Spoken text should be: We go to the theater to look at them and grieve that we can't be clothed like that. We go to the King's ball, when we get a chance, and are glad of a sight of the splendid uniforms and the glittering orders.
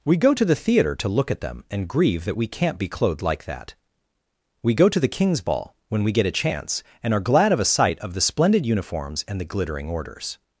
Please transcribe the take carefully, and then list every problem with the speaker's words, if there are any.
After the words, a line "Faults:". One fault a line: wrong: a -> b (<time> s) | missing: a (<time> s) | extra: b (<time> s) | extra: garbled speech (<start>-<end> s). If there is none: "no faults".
We go to the theater to look at them and grieve that we can't be clothed like that. We go to the King's ball, when we get a chance, and are glad of a sight of the splendid uniforms and the glittering orders.
Faults:
no faults